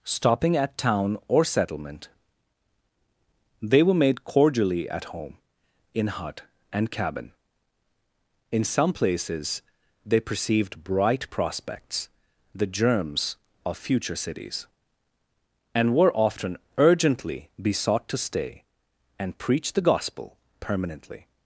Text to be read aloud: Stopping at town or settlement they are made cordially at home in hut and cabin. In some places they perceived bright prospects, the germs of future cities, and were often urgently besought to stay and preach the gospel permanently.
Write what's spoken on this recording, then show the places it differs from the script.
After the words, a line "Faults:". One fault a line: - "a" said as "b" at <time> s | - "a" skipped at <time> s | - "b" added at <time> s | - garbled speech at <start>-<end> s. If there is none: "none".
Stopping at town or settlement they were made cordially at home in hut and cabin. In some places they perceived bright prospects, the germs of future cities, and were often urgently besought to stay and preach the gospel permanently.
Faults:
- "are" said as "were" at 3.8 s